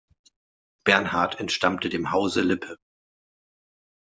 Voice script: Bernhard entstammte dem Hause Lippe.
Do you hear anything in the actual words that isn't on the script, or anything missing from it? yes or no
no